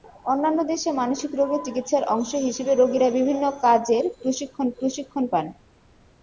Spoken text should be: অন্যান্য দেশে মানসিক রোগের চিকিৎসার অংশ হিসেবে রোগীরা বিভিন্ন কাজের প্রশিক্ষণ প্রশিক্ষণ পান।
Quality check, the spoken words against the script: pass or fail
pass